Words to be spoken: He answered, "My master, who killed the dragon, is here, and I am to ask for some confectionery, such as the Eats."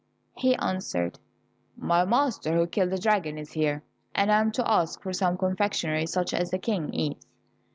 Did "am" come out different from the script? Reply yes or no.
no